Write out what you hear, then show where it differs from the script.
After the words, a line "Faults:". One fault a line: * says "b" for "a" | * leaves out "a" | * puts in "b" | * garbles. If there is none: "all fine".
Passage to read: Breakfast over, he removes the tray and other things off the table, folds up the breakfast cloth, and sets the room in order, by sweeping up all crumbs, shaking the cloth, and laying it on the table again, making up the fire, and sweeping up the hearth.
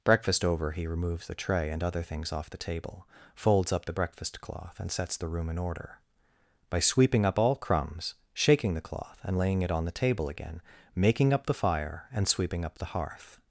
Breakfast over, he removes the tray and other things off the table, folds up the breakfast cloth, and sets the room in order, by sweeping up all crumbs, shaking the cloth, and laying it on the table again, making up the fire, and sweeping up the hearth.
Faults:
all fine